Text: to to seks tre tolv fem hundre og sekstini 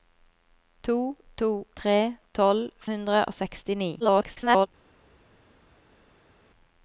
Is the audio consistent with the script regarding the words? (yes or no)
no